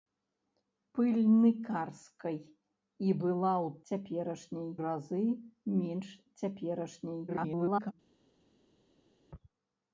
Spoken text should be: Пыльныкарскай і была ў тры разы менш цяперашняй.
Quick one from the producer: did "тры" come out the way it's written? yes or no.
no